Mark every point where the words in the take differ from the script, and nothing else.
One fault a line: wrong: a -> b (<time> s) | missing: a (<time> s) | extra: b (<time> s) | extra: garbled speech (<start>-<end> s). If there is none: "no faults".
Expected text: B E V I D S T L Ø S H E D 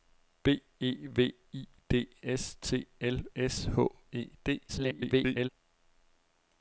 missing: Ø (3.2 s)
extra: garbled speech (4.7-5.5 s)